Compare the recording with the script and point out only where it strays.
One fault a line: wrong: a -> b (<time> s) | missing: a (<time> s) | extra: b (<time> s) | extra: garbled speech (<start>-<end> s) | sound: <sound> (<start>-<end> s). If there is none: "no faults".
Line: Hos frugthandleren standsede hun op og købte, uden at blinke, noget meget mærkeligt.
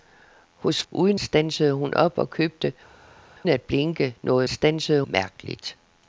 wrong: frugthandleren -> uden (0.9 s)
missing: uden (2.7 s)
wrong: meget -> standsede (4.5 s)